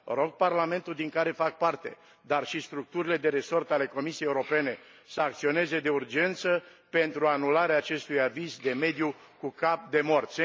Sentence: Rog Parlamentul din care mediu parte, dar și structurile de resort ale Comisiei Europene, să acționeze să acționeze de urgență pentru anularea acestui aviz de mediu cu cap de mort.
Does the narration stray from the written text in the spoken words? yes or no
yes